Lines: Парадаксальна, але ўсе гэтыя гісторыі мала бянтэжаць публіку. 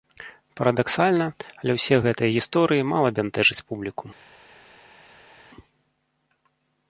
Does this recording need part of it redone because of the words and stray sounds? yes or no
no